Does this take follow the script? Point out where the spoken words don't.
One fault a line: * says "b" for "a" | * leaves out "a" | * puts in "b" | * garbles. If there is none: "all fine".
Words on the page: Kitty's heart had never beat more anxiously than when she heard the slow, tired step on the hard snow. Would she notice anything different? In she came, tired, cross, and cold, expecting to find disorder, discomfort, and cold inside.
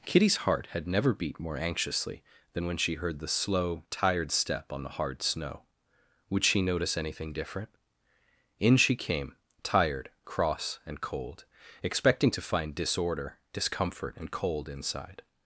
all fine